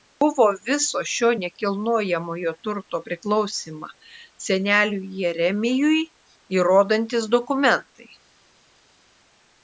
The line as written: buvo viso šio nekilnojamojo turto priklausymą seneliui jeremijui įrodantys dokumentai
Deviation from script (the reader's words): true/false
false